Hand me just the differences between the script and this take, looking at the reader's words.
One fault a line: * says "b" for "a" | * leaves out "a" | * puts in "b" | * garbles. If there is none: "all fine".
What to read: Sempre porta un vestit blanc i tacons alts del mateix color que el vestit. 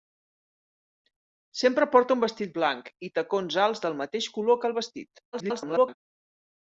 * garbles